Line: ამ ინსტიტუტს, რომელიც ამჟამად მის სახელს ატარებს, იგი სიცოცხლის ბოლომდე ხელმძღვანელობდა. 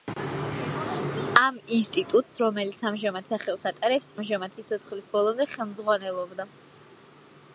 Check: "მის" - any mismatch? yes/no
yes